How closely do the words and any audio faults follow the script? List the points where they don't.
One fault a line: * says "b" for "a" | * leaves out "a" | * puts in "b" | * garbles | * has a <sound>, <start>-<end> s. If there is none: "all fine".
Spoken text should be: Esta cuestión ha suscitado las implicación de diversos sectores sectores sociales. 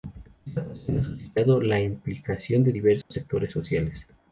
* says "la" for "las"
* has a dropout, 3.0-3.1 s
* leaves out "sectores"